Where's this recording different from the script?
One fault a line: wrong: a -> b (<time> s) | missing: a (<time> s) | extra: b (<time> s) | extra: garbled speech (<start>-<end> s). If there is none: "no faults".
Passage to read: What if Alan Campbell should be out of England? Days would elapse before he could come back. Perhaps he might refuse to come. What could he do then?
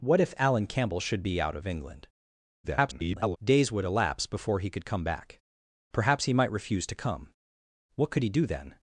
extra: garbled speech (2.6-3.4 s)